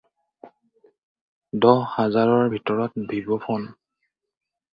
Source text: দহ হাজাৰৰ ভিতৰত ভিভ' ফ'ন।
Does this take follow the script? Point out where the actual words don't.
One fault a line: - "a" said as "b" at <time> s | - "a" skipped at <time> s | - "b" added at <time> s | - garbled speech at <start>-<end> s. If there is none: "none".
none